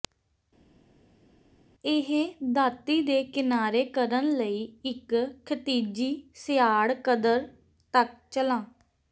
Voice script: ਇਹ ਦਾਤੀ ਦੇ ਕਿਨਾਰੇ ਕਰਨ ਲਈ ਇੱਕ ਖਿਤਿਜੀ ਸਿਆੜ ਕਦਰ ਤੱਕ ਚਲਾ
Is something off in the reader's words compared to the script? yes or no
no